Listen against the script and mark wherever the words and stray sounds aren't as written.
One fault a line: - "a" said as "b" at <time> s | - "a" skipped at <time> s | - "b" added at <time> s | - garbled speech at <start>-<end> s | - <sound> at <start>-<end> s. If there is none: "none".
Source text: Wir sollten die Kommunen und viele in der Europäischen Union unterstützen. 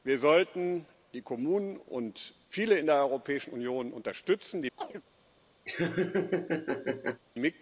- chirp at 4.8-5.0 s
- laugh at 5.7-7.2 s